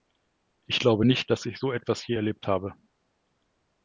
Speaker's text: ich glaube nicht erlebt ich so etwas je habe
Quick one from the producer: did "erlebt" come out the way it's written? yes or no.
no